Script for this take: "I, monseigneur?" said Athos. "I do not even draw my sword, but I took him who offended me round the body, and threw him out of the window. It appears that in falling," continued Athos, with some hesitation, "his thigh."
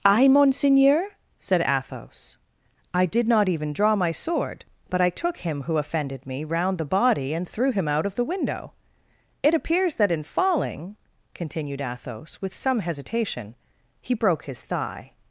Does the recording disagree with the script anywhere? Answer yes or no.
yes